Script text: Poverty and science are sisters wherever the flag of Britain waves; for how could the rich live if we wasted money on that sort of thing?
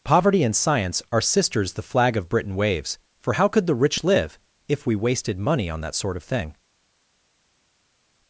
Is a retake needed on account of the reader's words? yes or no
yes